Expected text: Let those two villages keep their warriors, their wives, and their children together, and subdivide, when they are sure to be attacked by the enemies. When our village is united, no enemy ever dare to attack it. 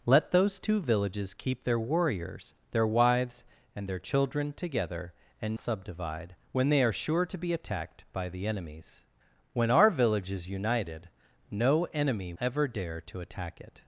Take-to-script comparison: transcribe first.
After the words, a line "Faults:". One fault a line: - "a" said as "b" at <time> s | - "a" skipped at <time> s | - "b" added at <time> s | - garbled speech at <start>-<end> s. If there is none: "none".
Let those two villages keep their warriors, their wives, and their children together, and subdivide, when they are sure to be attacked by the enemies. When our village is united, no enemy ever dare to attack it.
Faults:
none